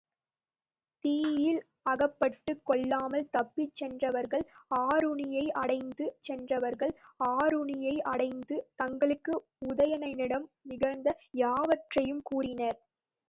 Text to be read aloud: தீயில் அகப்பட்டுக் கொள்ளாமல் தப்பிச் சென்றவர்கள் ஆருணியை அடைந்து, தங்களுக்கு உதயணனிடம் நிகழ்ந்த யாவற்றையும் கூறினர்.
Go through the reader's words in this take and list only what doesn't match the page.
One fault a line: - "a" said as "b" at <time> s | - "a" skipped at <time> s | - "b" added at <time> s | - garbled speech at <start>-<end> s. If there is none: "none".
- "சென்றவர்கள் ஆருணியை அடைந்து" added at 6.2 s